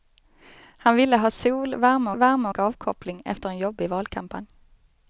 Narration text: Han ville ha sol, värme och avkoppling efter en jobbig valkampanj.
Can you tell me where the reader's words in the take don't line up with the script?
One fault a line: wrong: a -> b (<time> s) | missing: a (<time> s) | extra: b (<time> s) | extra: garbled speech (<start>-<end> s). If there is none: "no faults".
extra: värme (2.1 s)